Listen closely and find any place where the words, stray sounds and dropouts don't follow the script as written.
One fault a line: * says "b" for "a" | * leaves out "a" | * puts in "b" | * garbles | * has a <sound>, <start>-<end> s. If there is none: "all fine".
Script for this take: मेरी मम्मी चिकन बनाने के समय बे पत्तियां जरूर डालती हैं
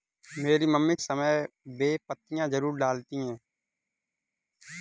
* leaves out "चिकन बनाने के"